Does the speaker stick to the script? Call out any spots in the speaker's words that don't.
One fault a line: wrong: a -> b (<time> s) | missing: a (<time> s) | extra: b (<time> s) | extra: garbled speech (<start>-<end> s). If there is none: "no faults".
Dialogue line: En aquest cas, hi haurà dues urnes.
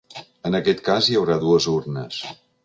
no faults